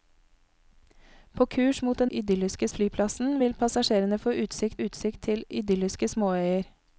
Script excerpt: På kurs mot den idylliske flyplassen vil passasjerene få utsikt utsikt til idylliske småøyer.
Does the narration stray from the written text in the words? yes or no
no